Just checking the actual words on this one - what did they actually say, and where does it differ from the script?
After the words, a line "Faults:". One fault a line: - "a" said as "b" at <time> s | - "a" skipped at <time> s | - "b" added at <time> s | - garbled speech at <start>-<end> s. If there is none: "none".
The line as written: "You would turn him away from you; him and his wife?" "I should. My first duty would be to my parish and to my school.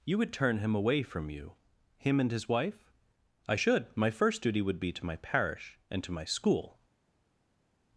"You would turn him away from you; him and his wife?" "I should. My first duty would be to my parish and to my school.
Faults:
none